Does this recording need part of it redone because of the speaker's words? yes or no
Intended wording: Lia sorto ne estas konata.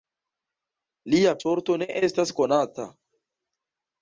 no